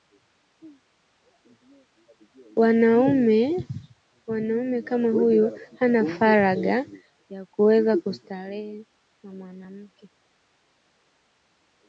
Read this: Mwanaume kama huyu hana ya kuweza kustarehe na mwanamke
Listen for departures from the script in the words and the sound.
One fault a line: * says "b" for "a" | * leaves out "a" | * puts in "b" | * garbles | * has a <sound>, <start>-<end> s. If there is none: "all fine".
* puts in "faragha"